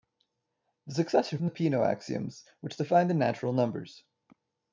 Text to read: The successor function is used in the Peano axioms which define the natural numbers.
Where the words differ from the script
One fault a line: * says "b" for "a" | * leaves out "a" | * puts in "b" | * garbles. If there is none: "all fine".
* leaves out "function is used"